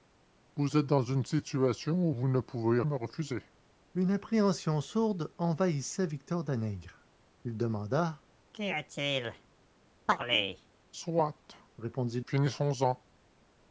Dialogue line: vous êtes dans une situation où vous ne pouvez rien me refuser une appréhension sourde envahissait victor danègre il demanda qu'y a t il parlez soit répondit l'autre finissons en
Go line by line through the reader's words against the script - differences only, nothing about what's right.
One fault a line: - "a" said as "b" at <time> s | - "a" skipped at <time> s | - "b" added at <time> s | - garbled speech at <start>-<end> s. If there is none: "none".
- "rien" skipped at 2.8 s
- "l'autre" skipped at 12.2 s